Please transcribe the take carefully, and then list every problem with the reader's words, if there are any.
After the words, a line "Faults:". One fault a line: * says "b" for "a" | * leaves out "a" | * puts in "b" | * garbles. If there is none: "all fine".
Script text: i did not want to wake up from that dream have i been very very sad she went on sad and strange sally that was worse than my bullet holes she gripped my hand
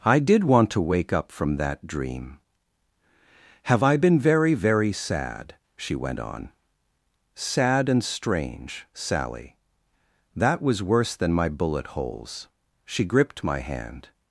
i did want to wake up from that dream have i been very very sad she went on sad and strange sally that was worse than my bullet holes she gripped my hand
Faults:
* leaves out "not"